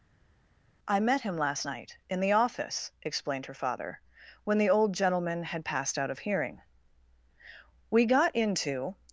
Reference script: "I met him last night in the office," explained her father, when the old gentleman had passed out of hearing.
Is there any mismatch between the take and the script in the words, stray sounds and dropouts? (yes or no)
yes